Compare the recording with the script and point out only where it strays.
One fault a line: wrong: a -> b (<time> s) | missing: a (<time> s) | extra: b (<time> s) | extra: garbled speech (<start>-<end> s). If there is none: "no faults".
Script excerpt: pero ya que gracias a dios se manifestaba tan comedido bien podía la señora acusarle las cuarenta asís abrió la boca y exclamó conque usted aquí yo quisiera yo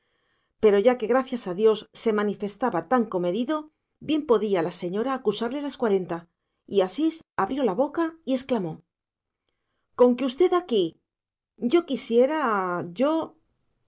extra: y (6.7 s)